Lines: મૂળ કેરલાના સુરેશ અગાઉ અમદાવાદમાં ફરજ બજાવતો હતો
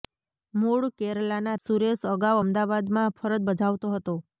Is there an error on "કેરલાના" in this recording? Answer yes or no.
no